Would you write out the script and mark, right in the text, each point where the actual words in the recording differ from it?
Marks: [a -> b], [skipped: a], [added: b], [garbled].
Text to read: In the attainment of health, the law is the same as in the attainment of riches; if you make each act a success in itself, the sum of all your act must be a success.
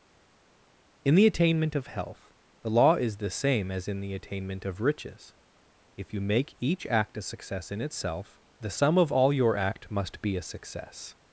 In the attainment of health, the law is the same as in the attainment of riches; if you make each act a success in itself, the sum of all your act must be a success.